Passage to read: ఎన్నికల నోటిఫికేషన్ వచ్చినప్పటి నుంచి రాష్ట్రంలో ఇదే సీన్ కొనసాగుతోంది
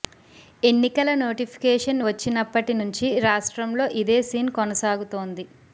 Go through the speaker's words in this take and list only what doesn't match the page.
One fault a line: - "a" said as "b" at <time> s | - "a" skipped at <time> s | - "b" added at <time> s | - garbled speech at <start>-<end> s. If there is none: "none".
none